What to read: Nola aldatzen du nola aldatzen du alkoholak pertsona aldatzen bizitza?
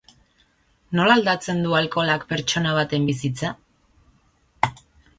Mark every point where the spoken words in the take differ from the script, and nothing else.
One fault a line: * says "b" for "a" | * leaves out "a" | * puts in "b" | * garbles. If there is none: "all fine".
* leaves out "nola aldatzen du"
* says "baten" for "aldatzen"